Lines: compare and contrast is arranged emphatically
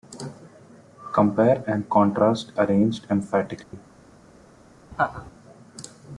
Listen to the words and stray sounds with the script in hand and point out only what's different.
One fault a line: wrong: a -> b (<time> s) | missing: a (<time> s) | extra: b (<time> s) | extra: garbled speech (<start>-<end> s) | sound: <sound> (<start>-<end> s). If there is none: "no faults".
missing: is (2.5 s)
sound: dropout (3.6-3.7 s)
sound: laugh (4.9-5.3 s)